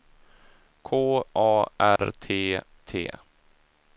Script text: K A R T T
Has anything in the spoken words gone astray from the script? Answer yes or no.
no